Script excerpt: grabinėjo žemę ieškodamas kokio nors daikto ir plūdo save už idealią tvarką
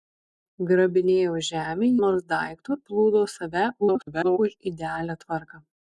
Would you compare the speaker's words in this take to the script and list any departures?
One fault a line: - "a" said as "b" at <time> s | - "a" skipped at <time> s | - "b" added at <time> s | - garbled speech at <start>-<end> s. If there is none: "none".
- "ieškodamas kokio" skipped at 1.9 s
- "ir" skipped at 2.8 s
- garbled speech at 3.8-4.4 s